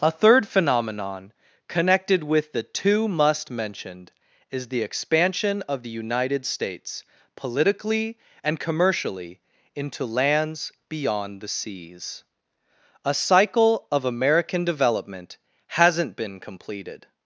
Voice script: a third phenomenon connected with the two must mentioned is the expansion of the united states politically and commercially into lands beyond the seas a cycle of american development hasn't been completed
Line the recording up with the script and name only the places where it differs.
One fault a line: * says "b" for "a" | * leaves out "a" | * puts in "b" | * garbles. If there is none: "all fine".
all fine